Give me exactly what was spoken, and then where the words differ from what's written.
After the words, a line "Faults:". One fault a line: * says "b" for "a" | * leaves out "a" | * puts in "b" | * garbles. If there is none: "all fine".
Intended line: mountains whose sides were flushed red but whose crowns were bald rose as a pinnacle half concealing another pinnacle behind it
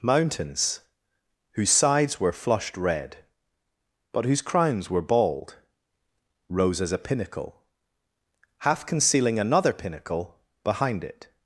mountains whose sides were flushed red but whose crowns were bald rose as a pinnacle half concealing another pinnacle behind it
Faults:
all fine